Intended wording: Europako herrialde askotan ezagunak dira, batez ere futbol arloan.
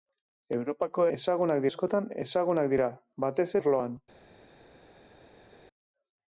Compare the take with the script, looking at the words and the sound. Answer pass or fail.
fail